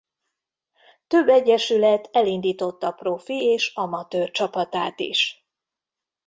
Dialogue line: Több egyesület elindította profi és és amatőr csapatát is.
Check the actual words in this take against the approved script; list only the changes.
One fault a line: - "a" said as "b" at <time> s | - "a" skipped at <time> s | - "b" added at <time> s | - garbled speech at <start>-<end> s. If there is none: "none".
- "és" skipped at 3.7 s